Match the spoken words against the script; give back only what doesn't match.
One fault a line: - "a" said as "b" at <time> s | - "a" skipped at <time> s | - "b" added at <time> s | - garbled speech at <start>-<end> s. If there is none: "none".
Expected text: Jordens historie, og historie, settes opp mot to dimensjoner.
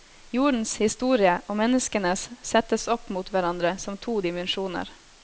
- "historie" said as "menneskenes" at 1.6 s
- "hverandre som" added at 3.3 s